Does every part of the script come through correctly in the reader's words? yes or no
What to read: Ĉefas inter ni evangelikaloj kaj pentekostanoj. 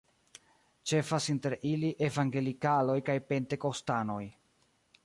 no